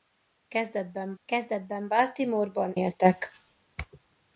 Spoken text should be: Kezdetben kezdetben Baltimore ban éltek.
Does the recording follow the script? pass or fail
pass